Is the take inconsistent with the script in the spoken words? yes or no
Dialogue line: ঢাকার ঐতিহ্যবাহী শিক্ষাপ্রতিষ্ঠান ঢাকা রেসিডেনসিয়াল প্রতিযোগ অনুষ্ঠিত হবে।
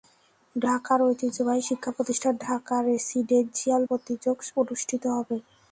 no